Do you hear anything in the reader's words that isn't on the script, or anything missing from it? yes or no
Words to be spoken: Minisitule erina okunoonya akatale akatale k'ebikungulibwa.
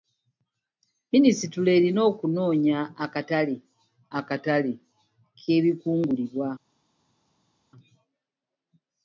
no